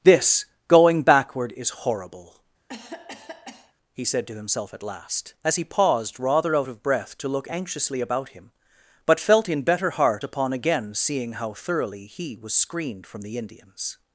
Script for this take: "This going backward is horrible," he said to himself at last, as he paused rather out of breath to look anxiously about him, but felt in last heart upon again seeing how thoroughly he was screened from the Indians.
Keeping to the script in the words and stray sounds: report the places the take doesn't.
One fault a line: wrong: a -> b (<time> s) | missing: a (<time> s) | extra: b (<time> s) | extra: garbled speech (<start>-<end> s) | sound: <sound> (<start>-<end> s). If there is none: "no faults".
sound: cough (2.7-3.7 s)
wrong: last -> better (9.6 s)